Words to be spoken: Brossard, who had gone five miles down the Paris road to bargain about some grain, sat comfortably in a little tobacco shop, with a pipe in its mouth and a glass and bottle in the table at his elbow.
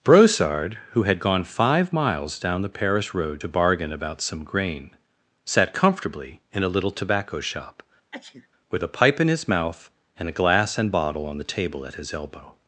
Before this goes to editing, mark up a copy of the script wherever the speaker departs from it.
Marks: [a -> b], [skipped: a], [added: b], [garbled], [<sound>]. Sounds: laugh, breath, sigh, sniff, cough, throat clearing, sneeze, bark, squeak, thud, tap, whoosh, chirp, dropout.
Brossard, who had gone five miles down the Paris road to bargain about some grain, sat comfortably in a little tobacco shop, [sneeze] with a pipe in [its -> his] mouth and a glass and bottle [in -> on] the table at his elbow.